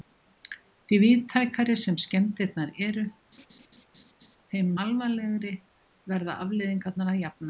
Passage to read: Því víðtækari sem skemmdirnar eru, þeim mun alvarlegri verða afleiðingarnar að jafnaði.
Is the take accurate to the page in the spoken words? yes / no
no